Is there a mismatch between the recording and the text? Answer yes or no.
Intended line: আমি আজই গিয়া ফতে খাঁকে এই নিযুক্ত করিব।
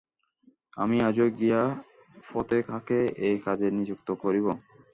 yes